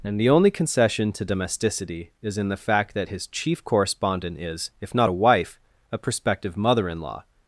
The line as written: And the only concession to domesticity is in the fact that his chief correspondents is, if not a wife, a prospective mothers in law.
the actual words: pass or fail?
fail